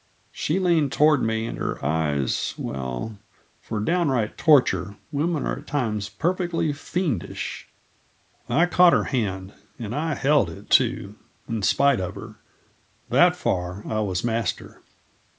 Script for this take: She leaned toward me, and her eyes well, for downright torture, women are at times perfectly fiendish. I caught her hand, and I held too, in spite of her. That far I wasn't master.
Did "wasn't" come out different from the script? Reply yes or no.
yes